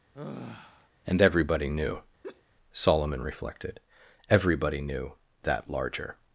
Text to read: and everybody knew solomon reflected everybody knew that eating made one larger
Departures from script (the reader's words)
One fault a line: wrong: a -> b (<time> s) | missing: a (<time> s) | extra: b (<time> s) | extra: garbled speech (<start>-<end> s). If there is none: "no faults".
missing: eating made one (5.7 s)